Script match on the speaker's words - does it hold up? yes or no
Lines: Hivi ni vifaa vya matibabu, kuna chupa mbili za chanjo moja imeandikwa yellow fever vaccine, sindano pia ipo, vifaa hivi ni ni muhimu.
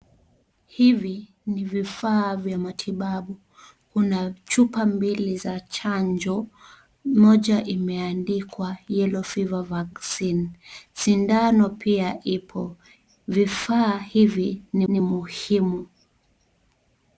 yes